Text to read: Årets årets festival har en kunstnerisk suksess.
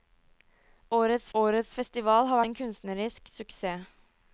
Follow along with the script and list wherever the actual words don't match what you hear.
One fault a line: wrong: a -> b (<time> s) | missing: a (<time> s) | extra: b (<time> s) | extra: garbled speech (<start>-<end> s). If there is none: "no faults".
no faults